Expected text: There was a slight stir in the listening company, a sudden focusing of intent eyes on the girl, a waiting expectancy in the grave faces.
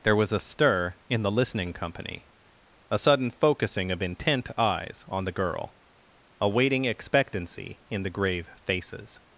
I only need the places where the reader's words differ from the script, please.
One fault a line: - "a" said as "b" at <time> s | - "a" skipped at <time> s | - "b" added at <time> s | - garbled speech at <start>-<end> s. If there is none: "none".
- "slight" skipped at 0.4 s